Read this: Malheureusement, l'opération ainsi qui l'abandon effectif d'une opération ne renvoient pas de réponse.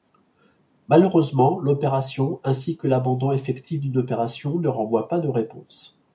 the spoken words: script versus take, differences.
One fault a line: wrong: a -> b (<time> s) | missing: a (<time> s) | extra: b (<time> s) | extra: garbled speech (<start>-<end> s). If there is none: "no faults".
wrong: qui -> que (2.8 s)